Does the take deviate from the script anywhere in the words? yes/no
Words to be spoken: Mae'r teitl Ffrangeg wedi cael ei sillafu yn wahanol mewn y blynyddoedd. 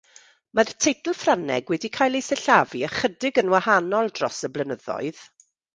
yes